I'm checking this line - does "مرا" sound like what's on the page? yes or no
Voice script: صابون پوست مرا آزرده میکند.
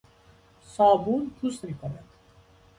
no